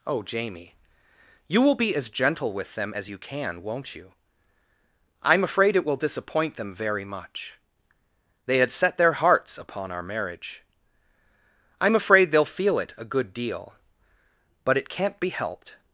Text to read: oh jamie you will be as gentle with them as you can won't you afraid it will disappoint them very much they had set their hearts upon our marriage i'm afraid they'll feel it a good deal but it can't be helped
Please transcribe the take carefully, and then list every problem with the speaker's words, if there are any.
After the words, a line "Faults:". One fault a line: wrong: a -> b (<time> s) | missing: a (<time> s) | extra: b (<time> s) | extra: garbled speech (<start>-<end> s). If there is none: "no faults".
oh jamie you will be as gentle with them as you can won't you i'm afraid it will disappoint them very much they had set their hearts upon our marriage i'm afraid they'll feel it a good deal but it can't be helped
Faults:
extra: i'm (5.2 s)